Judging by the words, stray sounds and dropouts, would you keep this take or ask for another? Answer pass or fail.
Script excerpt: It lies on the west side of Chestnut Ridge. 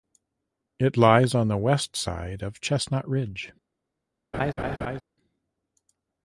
fail